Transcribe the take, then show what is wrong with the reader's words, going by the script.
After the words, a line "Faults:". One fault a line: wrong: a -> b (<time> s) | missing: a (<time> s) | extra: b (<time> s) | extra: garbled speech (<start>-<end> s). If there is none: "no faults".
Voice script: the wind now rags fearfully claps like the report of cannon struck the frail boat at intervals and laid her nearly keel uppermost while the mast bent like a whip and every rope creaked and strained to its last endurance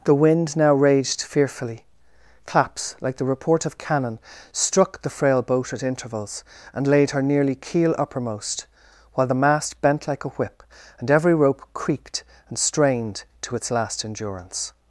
the wind now raged fearfully claps like the report of cannon struck the frail boat at intervals and laid her nearly keel uppermost while the mast bent like a whip and every rope creaked and strained to its last endurance
Faults:
wrong: rags -> raged (0.7 s)